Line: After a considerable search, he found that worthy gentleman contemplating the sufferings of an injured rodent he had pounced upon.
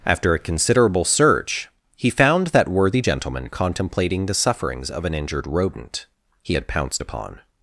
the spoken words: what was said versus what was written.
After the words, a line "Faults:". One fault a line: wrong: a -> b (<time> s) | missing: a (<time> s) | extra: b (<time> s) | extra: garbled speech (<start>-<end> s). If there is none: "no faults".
After a considerable search, he found that worthy gentleman contemplating the sufferings of an injured rodent he had pounced upon.
Faults:
no faults